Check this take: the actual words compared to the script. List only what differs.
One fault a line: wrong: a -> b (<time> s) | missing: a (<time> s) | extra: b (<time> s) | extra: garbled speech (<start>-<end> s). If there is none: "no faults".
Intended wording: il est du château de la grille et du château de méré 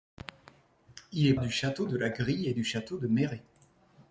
no faults